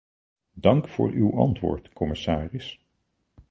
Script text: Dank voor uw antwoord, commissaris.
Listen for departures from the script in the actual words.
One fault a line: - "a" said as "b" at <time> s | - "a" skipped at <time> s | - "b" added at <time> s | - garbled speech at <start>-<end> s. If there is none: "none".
none